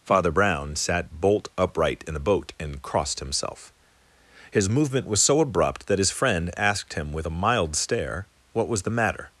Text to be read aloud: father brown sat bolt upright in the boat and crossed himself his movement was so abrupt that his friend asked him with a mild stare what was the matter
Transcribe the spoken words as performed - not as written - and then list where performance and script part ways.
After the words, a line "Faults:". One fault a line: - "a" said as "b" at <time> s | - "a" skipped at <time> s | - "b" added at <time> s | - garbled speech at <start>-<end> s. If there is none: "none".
father brown sat bolt upright in the boat and crossed himself his movement was so abrupt that his friend asked him with a mild stare what was the matter
Faults:
none